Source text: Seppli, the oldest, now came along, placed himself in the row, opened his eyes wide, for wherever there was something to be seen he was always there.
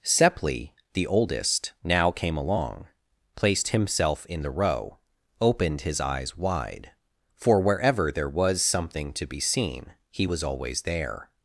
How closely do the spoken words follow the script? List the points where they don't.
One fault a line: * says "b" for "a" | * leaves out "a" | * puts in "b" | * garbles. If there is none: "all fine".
all fine